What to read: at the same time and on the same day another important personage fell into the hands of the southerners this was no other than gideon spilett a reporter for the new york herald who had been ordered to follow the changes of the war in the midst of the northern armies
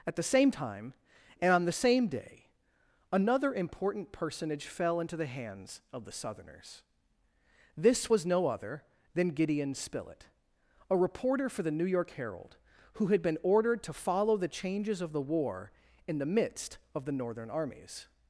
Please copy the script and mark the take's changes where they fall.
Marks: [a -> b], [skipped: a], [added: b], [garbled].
at the same time and on the same day another important personage fell into the hands of the southerners this was no other than gideon spilett a reporter for the new york herald who had been ordered to follow the changes of the war in the midst of the northern armies